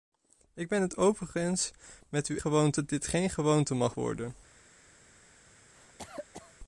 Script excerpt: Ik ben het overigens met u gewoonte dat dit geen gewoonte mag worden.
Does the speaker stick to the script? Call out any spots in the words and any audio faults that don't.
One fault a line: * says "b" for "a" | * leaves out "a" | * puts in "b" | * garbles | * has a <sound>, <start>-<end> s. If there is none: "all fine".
* has a cough, 5.7-6.5 s